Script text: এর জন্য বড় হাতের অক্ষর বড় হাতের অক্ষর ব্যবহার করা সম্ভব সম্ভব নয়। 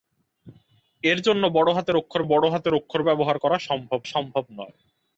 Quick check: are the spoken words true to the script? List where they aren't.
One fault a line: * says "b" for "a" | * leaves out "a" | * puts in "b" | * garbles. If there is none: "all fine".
all fine